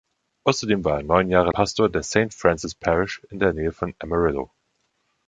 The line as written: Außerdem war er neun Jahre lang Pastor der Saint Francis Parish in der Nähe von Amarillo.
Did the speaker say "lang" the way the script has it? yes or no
no